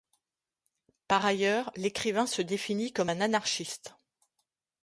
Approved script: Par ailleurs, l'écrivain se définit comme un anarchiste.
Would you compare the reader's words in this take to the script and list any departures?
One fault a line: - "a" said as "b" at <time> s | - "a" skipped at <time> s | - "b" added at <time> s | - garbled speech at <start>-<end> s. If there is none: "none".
none